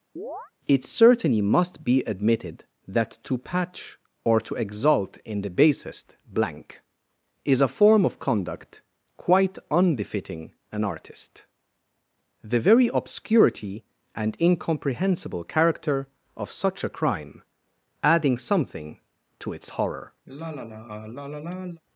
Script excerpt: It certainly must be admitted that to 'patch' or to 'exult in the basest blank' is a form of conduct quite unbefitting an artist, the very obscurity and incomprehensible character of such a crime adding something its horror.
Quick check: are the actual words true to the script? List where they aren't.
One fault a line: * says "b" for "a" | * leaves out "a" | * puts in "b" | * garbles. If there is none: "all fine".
* puts in "to"